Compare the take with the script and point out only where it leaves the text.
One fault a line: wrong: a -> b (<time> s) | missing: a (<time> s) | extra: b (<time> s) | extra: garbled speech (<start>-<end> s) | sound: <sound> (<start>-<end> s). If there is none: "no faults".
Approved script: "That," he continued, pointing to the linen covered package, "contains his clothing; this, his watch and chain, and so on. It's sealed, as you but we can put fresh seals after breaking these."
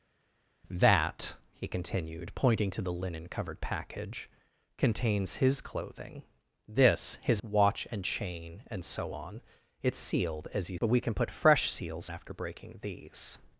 no faults